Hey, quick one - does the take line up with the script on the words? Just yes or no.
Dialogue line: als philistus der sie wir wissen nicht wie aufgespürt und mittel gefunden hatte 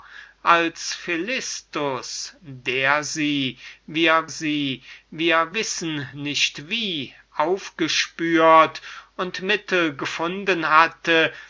no